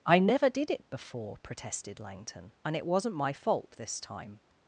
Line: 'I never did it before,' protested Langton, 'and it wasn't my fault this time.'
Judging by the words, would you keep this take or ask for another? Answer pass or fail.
pass